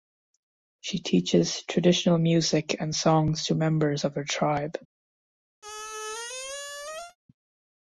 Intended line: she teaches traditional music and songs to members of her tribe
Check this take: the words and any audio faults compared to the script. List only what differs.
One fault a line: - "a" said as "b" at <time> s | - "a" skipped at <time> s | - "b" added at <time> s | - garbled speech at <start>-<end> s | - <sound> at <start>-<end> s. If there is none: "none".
- squeak at 5.6-7.2 s